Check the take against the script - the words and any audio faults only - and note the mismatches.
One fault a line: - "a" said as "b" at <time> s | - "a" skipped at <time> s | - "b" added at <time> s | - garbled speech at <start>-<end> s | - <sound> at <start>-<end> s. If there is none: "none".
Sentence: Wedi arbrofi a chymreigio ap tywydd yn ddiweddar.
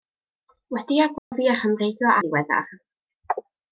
- dropout at 1.2-1.3 s
- "ap tywydd" skipped at 2.2 s